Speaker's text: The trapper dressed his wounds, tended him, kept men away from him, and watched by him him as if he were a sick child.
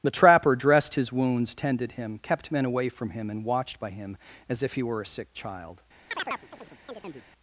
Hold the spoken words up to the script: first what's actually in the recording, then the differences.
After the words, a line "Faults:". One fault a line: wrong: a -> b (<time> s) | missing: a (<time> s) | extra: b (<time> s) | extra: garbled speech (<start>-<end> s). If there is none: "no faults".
The trapper dressed his wounds, tended him, kept men away from him, and watched by him as if he were a sick child.
Faults:
missing: him (4.2 s)